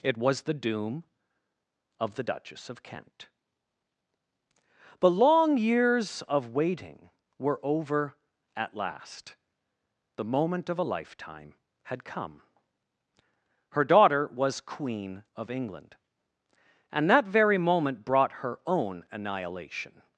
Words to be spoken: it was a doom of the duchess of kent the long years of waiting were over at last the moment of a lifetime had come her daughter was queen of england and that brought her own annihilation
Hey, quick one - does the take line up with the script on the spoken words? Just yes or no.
no